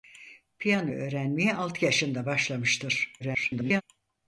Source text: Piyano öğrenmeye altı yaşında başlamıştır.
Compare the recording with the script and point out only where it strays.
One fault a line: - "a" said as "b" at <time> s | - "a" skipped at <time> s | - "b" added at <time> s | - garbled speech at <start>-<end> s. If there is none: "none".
- garbled speech at 3.2-3.8 s